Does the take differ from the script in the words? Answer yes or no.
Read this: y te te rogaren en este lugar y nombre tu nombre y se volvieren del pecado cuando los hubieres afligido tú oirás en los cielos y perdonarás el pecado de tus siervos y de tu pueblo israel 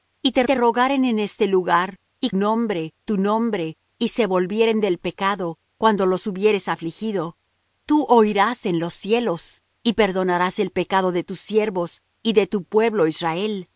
no